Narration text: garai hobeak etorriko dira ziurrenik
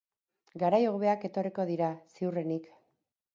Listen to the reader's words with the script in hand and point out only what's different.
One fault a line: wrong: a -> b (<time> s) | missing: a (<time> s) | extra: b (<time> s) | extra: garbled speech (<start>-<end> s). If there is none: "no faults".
no faults